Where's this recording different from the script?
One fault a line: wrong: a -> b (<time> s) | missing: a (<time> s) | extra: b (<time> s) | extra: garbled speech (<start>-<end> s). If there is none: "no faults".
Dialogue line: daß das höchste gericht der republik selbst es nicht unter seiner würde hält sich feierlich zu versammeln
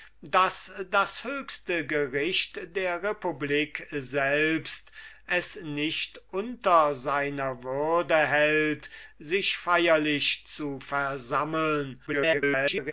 extra: garbled speech (12.1-12.9 s)